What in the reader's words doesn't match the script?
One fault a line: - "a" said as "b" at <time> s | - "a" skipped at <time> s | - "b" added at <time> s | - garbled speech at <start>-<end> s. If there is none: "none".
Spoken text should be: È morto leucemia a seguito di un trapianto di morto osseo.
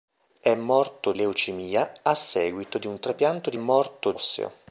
none